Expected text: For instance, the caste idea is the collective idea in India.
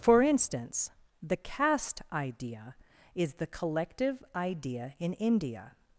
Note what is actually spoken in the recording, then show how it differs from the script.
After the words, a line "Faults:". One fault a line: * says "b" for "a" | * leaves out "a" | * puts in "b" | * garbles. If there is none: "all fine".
For instance, the caste idea is the collective idea in India.
Faults:
all fine